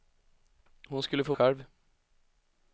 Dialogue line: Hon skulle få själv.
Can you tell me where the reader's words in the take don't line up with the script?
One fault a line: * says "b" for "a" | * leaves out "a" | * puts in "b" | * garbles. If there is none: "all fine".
all fine